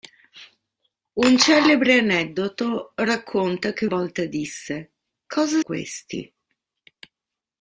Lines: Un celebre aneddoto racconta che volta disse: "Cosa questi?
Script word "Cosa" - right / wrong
right